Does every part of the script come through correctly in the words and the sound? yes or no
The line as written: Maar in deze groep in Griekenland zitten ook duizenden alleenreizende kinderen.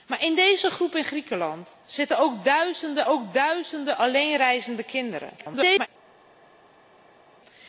no